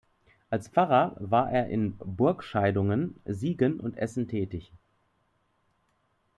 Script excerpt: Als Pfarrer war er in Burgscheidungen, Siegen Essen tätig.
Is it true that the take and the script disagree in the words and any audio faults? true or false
true